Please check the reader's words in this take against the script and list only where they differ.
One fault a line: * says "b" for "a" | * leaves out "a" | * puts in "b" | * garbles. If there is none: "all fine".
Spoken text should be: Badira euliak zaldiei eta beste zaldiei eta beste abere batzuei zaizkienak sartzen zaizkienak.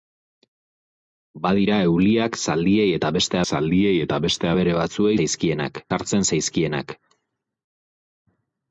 all fine